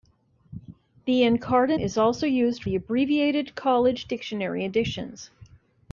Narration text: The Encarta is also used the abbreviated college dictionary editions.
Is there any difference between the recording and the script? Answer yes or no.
no